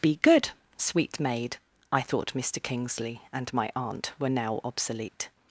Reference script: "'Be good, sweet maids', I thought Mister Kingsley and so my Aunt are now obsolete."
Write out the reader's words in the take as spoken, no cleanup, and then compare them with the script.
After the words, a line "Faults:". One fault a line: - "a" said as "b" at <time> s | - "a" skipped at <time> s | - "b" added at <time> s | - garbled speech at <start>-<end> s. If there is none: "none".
"'Be good, sweet maid', I thought Mister Kingsley and my Aunt were now obsolete."
Faults:
- "maids" said as "maid" at 1.2 s
- "so" skipped at 3.5 s
- "are" said as "were" at 4.2 s